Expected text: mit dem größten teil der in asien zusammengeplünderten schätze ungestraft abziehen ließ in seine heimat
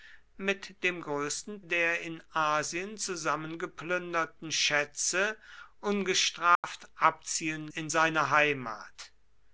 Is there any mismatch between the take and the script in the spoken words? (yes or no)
yes